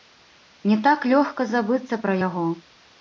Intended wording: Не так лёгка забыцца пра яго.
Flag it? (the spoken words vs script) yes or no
no